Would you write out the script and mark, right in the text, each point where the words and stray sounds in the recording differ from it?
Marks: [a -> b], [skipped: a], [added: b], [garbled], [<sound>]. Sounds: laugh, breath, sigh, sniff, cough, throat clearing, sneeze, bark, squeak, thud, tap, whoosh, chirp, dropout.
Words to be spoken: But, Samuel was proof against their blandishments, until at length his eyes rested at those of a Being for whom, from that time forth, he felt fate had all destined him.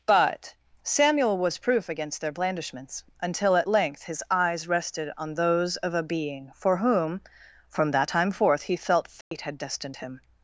But, Samuel was proof against their blandishments, until at length his eyes rested [at -> on] those of a Being for whom, from that time forth, he felt fate [dropout] had [skipped: all] destined him.